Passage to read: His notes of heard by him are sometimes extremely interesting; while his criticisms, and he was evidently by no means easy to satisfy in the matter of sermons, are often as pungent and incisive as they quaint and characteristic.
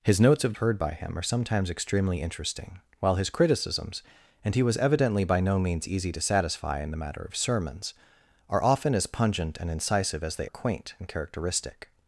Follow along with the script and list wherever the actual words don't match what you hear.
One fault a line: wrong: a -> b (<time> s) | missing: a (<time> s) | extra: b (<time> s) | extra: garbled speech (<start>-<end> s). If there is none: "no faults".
no faults